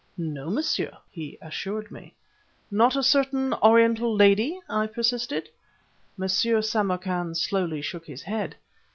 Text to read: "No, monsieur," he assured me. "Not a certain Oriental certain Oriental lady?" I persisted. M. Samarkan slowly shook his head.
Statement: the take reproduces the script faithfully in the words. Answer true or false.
false